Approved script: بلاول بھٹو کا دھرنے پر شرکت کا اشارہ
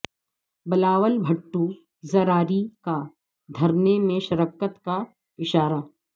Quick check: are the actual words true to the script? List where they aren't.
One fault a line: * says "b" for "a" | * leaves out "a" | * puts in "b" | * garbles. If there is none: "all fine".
* puts in "زراری"
* says "میں" for "پر"